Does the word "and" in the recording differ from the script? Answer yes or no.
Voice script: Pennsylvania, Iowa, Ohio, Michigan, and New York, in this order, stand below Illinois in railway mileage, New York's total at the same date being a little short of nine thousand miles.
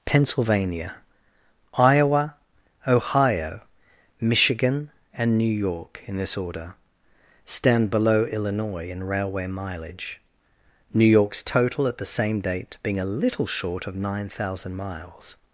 no